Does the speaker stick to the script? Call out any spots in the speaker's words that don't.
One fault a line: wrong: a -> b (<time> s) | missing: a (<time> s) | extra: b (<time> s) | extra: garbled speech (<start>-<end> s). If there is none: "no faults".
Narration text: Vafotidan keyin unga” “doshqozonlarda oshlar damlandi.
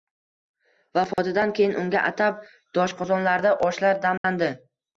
extra: atab (2.1 s)